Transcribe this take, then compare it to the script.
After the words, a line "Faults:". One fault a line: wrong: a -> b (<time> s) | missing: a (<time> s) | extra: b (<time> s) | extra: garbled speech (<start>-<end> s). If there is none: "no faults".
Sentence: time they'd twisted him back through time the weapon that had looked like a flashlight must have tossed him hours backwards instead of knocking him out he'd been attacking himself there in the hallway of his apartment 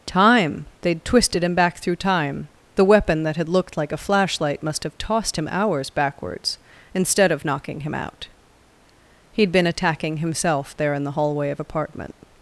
time they'd twisted him back through time the weapon that had looked like a flashlight must have tossed him hours backwards instead of knocking him out he'd been attacking himself there in the hallway of apartment
Faults:
missing: his (11.6 s)